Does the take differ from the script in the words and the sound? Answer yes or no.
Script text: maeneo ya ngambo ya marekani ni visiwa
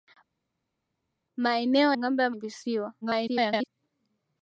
yes